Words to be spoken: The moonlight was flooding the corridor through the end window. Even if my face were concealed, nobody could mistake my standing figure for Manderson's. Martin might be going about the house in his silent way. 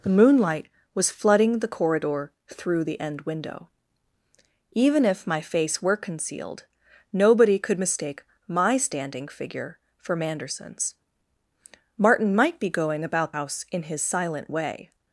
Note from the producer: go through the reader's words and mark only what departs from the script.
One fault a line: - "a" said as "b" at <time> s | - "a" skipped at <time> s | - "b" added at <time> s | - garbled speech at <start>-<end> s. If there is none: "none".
- "the" skipped at 13.3 s